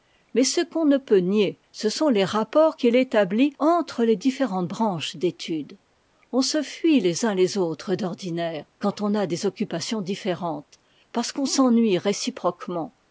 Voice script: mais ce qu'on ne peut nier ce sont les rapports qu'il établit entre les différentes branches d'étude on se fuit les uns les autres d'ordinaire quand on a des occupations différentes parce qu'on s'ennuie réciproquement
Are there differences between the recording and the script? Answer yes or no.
no